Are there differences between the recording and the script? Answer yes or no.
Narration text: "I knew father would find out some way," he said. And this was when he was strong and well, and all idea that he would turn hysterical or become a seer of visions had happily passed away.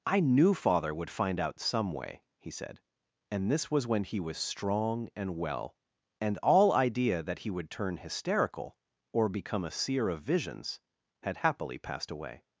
no